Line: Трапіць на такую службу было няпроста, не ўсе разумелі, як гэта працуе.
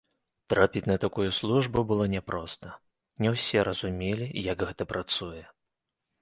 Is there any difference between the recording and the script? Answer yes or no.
no